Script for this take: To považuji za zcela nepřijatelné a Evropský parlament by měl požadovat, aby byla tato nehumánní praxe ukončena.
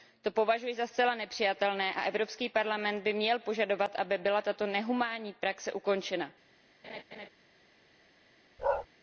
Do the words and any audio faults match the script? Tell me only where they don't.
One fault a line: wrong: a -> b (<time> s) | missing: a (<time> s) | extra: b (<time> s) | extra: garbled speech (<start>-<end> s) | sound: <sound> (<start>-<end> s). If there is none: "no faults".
sound: laugh (6.8-7.3 s)
sound: bark (8.6-8.9 s)